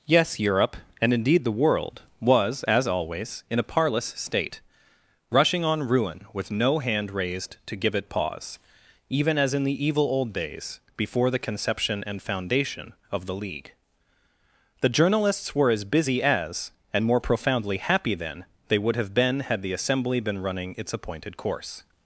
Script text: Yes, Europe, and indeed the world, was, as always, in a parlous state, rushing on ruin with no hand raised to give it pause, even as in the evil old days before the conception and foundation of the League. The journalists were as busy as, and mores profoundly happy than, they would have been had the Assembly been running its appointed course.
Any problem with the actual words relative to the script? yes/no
yes